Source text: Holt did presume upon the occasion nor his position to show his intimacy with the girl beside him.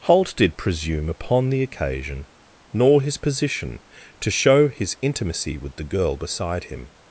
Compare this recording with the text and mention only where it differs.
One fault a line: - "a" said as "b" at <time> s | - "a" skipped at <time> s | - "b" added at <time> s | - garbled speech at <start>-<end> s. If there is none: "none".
none